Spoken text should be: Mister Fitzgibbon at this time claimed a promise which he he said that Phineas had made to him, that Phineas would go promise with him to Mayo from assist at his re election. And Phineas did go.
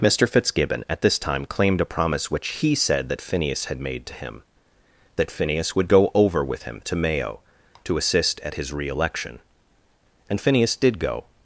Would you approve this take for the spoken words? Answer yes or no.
no